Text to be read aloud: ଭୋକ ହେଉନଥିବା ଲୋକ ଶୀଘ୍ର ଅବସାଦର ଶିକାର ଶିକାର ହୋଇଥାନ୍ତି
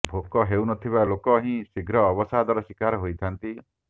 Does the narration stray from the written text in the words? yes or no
yes